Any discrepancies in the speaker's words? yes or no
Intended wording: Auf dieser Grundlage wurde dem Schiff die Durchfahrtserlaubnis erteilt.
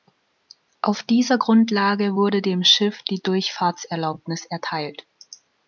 no